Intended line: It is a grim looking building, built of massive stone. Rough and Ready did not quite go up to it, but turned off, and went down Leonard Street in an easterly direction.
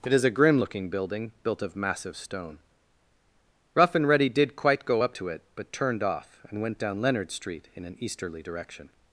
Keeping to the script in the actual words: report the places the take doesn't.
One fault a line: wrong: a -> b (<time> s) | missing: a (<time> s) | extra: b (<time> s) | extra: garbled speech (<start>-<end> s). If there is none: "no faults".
missing: not (4.6 s)